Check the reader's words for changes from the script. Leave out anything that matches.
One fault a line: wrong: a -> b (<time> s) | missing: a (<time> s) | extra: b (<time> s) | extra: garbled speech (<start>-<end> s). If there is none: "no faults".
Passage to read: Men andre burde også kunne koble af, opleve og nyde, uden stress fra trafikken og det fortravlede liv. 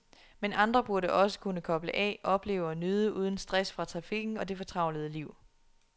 no faults